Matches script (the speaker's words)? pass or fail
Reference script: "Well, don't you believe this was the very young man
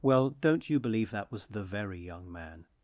fail